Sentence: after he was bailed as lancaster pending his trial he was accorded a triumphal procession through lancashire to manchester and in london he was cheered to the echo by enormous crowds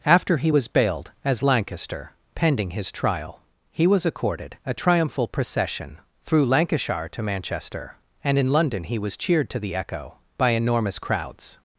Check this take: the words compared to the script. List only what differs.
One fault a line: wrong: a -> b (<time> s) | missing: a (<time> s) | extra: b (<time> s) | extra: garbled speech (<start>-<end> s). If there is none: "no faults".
no faults